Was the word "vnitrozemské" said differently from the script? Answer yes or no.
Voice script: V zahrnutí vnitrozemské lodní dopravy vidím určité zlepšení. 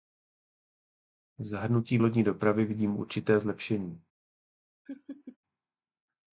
yes